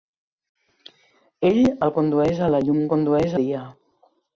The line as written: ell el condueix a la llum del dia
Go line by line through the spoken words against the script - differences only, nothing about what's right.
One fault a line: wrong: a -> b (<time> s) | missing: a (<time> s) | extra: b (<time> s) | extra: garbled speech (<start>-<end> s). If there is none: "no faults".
wrong: del -> condueix (2.9 s)